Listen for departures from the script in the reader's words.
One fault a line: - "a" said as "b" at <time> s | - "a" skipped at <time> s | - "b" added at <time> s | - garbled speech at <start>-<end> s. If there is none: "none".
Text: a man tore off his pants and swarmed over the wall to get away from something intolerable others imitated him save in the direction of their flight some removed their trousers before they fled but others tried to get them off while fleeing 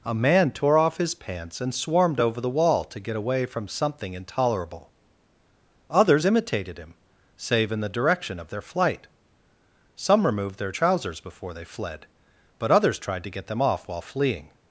none